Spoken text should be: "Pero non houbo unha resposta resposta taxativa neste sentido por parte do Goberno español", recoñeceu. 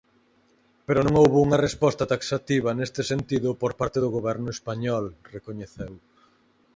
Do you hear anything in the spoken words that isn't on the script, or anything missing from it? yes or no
yes